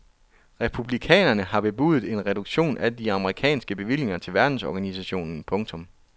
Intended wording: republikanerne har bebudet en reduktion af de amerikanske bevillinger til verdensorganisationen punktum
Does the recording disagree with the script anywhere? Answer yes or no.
no